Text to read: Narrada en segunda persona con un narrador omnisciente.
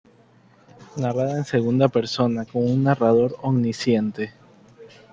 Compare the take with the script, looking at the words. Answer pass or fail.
pass